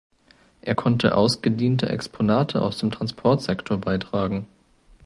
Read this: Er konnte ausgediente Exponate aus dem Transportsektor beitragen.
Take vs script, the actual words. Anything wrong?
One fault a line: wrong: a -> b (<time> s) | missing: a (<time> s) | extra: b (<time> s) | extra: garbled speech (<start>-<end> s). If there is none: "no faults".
no faults